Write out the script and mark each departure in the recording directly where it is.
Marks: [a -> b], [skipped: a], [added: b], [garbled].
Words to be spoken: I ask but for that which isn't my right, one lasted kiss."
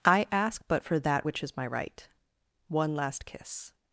I ask but for that which [isn't -> is] my right, one [lasted -> last] kiss."